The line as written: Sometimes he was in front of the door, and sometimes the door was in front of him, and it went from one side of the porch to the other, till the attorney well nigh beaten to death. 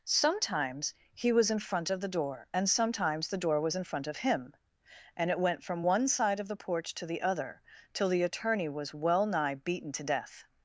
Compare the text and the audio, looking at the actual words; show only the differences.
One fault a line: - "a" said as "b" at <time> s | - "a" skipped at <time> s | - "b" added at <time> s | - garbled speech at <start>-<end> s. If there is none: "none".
- "was" added at 8.7 s